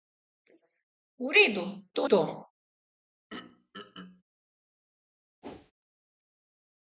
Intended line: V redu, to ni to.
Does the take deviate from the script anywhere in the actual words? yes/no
yes